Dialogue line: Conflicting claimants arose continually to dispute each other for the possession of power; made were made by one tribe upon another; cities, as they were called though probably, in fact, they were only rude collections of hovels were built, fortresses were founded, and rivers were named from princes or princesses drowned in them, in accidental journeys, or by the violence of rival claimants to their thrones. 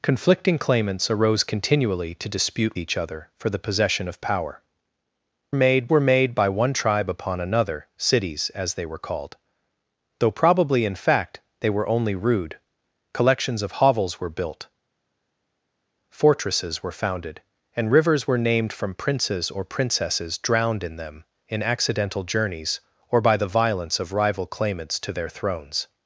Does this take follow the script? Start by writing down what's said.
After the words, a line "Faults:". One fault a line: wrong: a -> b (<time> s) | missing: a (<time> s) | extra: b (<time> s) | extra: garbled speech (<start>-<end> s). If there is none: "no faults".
Conflicting claimants arose continually to dispute each other for the possession of power; made were made by one tribe upon another; cities, as they were called though probably, in fact, they were only rude collections of hovels were built, fortresses were founded, and rivers were named from princes or princesses drowned in them, in accidental journeys, or by the violence of rival claimants to their thrones.
Faults:
no faults